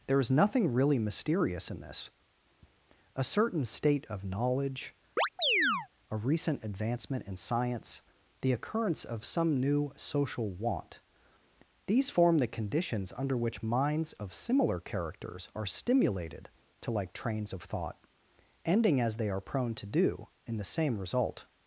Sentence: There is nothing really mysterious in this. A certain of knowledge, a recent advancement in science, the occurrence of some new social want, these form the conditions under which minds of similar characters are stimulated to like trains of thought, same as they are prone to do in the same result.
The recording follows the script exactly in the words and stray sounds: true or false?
false